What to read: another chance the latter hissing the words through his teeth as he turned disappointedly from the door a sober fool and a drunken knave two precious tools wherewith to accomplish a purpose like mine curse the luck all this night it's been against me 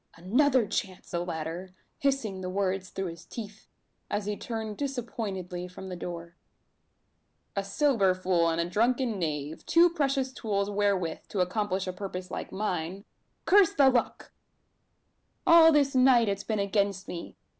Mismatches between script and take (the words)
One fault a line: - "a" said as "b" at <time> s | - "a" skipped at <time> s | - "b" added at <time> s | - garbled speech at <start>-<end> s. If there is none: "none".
none